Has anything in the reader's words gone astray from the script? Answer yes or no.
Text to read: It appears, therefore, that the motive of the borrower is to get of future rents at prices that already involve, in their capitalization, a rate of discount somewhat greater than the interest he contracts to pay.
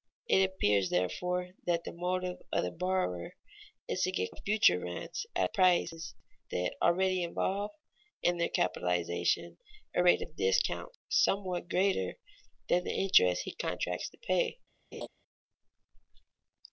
no